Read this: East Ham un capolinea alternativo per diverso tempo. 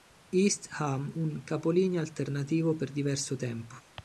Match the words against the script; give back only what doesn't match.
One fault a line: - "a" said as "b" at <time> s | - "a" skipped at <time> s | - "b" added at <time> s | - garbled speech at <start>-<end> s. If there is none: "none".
none